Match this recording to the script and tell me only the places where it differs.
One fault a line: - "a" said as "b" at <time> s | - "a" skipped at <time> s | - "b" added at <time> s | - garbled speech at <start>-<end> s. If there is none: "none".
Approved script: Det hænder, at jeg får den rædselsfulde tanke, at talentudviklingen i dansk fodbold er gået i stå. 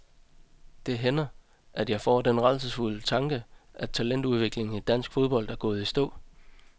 none